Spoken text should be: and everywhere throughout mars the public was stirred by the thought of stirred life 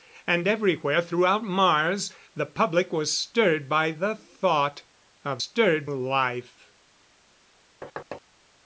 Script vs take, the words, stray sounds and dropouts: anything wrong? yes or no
yes